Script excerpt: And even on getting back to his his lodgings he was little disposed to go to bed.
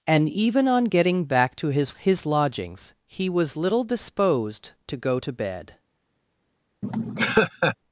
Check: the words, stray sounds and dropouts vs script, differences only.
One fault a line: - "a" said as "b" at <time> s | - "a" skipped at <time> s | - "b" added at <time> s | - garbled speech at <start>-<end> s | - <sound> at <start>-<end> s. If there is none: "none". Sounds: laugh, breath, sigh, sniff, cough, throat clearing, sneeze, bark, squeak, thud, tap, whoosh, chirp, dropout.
- laugh at 6.8-7.8 s